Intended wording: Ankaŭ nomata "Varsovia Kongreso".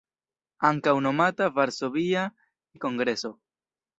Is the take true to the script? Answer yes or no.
yes